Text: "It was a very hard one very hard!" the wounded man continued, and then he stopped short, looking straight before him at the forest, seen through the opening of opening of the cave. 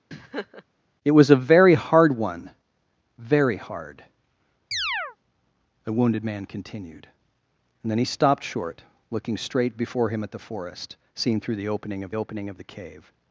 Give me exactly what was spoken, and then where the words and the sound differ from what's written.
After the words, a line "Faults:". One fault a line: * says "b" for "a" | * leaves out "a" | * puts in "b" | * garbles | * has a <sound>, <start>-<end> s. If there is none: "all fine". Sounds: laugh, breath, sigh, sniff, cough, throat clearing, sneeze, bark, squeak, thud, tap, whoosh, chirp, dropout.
"It was a very hard one very hard!" the wounded man continued, and then he stopped short, looking straight before him at the forest, seen through the opening of opening of the cave.
Faults:
* has a laugh, 0.1-0.6 s
* has a chirp, 4.7-5.2 s